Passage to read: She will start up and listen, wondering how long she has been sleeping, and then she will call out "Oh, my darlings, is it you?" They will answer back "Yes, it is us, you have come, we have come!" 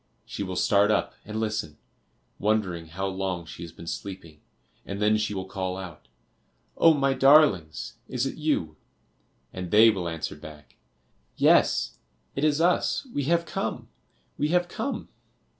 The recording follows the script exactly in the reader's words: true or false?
false